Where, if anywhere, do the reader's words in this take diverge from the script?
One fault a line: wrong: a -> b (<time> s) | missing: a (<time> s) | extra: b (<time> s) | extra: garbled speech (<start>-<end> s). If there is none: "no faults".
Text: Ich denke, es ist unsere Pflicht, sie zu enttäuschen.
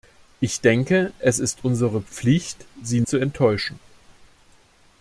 no faults